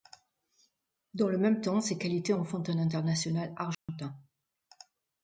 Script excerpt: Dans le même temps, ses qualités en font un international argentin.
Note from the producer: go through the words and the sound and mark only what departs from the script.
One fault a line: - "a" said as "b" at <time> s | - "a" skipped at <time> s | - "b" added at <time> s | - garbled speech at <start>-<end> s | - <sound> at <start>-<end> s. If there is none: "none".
- dropout at 3.7-3.9 s